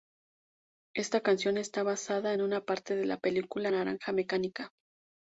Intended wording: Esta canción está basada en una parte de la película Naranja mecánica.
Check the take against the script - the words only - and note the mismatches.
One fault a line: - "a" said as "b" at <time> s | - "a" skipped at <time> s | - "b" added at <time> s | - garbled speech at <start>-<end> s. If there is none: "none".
none